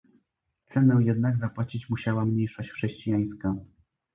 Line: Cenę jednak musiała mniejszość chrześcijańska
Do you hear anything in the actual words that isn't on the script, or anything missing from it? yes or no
yes